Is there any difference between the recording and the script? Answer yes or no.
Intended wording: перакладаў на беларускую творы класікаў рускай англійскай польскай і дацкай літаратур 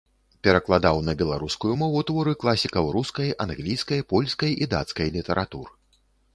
yes